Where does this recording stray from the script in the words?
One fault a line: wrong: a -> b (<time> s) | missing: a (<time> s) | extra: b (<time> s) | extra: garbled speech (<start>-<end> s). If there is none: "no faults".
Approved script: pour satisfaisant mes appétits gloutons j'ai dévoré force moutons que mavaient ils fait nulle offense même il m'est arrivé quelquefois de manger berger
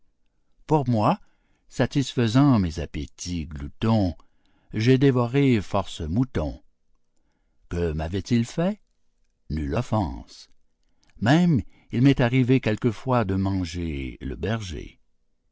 extra: moi (0.9 s)
extra: le (14.2 s)